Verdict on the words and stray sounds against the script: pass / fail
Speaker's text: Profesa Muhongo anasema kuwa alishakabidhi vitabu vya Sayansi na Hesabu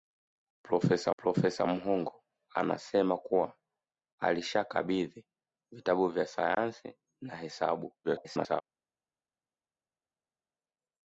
fail